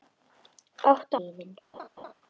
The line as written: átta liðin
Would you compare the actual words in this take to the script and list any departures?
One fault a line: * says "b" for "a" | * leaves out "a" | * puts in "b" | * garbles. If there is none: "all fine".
all fine